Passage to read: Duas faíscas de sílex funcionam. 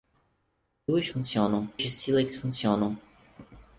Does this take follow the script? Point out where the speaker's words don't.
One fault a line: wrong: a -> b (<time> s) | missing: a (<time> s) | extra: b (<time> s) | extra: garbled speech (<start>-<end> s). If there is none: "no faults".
wrong: faíscas -> funcionam (1.1 s)